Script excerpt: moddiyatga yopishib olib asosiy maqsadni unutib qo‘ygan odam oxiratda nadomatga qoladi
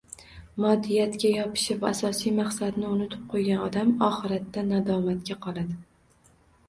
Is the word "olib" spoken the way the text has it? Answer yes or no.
no